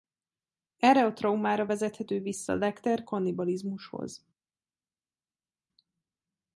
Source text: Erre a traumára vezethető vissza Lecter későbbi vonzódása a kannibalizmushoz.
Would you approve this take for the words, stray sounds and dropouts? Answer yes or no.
no